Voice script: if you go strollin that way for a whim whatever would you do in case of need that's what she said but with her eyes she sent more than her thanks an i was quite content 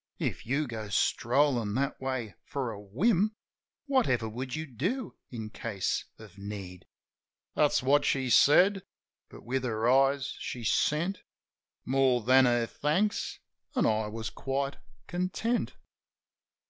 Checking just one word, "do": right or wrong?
right